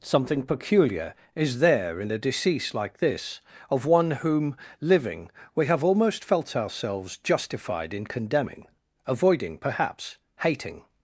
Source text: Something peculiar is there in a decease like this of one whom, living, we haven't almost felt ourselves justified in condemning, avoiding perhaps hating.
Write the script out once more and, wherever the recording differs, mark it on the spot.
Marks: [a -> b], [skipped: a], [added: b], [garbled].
Something peculiar is there in a decease like this of one whom, living, we [haven't -> have] almost felt ourselves justified in condemning, avoiding perhaps hating.